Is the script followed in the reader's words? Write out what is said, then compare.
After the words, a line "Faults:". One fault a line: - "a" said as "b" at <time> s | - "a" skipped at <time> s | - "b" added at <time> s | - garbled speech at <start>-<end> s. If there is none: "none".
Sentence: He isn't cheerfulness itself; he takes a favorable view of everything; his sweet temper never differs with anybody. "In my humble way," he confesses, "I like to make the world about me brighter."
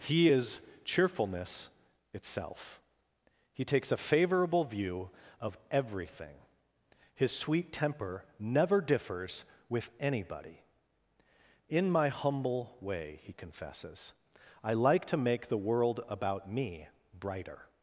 He is cheerfulness itself; he takes a favorable view of everything; his sweet temper never differs with anybody. "In my humble way," he confesses, "I like to make the world about me brighter."
Faults:
- "isn't" said as "is" at 0.3 s